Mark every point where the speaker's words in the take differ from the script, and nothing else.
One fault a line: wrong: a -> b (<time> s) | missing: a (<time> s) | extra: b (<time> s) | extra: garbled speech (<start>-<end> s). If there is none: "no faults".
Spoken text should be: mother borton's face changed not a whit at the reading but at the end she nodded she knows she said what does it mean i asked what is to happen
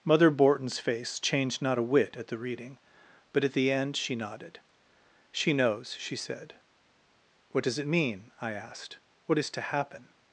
no faults